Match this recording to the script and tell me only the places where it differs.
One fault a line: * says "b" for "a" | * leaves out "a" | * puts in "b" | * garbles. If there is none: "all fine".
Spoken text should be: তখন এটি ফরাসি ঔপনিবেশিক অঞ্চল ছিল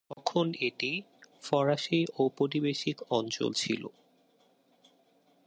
all fine